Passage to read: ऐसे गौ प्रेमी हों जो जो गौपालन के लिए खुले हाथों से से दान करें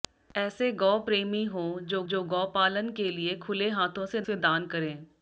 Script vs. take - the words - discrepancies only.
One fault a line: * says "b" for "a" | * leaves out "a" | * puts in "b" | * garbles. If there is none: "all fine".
all fine